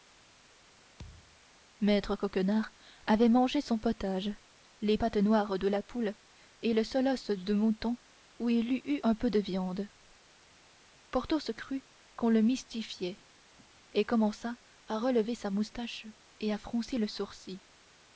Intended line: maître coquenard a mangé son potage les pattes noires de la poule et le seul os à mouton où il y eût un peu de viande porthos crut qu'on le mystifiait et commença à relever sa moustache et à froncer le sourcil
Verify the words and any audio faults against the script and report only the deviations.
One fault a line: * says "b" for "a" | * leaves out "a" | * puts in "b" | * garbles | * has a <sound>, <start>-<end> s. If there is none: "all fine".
* has a thud, 1.0-1.4 s
* says "avait" for "a"
* says "de" for "à"